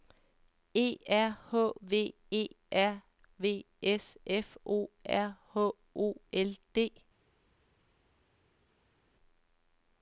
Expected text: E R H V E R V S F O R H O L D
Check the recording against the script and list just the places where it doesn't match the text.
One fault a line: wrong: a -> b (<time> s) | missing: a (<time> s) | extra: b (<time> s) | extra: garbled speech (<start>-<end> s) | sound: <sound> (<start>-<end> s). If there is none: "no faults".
no faults